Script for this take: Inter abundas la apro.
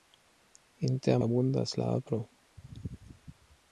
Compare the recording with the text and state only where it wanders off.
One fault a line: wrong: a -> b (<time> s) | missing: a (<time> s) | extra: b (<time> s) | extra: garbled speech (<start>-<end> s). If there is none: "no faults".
no faults